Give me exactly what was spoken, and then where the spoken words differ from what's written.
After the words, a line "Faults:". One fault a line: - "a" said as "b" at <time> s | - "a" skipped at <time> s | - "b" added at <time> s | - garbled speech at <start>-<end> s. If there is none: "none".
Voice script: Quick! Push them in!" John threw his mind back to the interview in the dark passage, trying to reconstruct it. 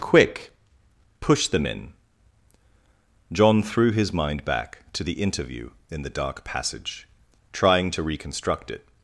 Quick! Push them in!" John threw his mind back to the interview in the dark passage, trying to reconstruct it.
Faults:
none